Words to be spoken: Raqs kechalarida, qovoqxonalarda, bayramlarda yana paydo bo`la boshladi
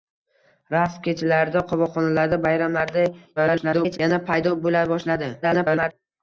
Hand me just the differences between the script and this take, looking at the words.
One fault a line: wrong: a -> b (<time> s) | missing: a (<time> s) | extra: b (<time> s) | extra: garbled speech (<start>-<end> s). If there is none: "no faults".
extra: garbled speech (3.4-4.0 s)
extra: garbled speech (5.4-5.9 s)